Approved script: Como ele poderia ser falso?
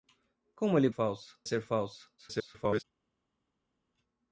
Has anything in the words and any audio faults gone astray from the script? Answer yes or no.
yes